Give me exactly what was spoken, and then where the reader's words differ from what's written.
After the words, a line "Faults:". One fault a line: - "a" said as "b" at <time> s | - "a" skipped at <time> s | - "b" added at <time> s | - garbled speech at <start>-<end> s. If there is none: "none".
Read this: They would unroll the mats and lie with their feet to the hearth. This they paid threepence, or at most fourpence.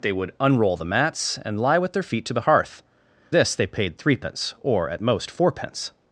They would unroll the mats and lie with their feet to the hearth. This they paid threepence, or at most fourpence.
Faults:
none